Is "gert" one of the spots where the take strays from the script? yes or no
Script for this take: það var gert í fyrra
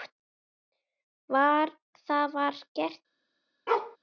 no